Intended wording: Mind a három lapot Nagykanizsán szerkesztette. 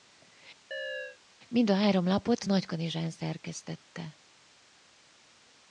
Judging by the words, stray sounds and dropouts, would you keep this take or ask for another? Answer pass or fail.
fail